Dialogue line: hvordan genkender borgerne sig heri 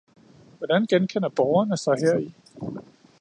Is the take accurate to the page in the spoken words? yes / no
yes